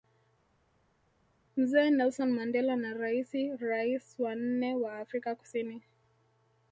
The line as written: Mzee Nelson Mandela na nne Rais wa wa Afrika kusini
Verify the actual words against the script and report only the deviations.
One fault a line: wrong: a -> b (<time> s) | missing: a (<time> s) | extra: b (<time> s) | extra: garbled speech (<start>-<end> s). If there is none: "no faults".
wrong: nne -> raisi (2.9 s)
extra: nne (4.4 s)